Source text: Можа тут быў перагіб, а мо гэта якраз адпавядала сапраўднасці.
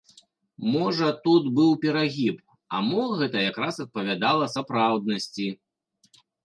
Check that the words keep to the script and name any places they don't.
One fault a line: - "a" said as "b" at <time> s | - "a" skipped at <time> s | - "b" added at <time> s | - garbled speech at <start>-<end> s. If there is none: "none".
none